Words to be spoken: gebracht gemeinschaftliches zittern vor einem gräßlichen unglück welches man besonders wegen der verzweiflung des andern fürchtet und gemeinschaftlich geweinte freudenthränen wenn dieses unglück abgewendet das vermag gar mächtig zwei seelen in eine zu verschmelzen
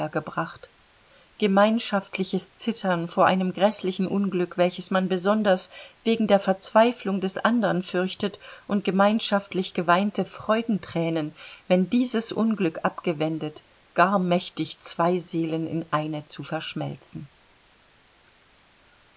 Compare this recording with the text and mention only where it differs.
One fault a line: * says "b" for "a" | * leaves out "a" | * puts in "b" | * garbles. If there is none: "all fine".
* leaves out "das vermag"